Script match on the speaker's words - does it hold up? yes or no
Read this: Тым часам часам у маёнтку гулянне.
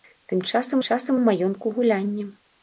yes